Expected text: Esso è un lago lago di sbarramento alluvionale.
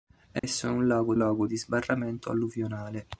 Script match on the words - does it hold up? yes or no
yes